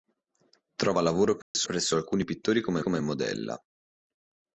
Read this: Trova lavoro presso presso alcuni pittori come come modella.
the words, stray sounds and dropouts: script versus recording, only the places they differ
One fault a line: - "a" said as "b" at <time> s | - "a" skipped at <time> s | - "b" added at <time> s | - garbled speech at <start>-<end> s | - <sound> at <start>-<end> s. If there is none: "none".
- dropout at 1.4-1.5 s